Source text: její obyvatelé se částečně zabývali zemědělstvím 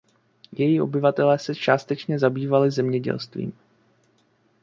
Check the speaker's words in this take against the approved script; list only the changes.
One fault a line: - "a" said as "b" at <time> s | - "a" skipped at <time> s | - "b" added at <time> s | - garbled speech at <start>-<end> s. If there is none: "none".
none